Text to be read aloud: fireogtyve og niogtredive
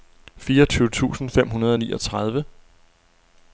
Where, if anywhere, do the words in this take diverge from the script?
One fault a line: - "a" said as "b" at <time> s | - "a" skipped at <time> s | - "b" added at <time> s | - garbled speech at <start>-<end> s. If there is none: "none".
- "tusind fem hundrede" added at 0.9 s